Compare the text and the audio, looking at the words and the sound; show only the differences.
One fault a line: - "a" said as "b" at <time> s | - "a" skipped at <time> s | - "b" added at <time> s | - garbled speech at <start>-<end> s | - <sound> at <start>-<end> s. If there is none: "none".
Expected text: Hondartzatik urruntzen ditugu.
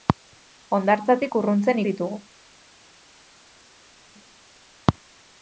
none